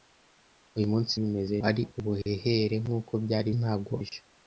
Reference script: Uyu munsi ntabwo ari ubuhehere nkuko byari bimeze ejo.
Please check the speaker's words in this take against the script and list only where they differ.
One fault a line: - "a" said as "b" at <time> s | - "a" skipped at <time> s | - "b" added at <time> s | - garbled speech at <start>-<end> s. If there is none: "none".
- "ntabwo" said as "bimeze" at 1.2 s
- "bimeze" said as "ntabwo" at 3.6 s